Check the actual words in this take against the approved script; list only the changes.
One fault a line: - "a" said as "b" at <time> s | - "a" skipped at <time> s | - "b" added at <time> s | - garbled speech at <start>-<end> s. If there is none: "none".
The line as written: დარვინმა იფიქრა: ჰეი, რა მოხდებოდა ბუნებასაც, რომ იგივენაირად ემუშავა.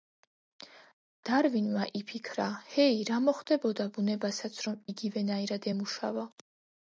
none